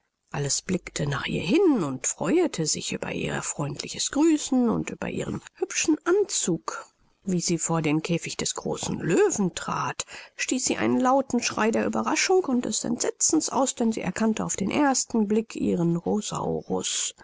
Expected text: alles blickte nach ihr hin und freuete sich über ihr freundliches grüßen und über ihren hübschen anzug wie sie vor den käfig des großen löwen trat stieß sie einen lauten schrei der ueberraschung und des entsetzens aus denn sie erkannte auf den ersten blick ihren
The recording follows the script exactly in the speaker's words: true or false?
true